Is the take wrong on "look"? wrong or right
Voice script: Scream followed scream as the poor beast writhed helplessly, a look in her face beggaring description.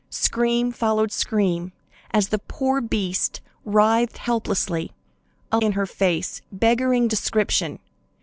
wrong